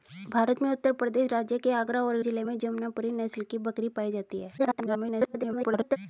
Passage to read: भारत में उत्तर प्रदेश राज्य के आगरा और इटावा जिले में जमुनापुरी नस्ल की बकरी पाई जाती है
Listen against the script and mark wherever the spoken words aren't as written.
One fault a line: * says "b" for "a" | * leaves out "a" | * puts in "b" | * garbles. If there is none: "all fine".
* leaves out "इटावा"
* garbles